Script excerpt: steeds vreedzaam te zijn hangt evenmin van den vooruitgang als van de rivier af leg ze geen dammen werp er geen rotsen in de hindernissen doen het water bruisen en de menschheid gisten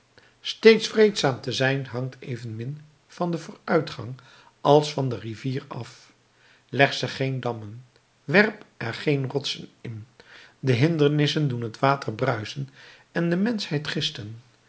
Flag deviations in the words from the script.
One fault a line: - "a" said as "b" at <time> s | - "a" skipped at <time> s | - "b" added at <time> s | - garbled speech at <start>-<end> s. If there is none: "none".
none